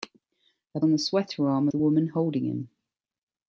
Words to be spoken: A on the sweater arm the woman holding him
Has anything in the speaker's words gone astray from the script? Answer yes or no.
no